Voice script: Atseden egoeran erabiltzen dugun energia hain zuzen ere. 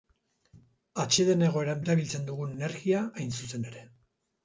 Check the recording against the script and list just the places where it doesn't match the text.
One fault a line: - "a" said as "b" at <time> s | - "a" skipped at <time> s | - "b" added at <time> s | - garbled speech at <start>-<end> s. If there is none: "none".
none